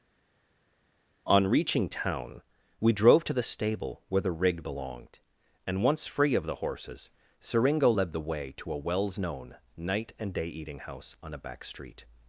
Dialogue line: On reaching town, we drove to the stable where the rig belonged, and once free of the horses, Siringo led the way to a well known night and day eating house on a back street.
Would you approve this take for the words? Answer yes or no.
no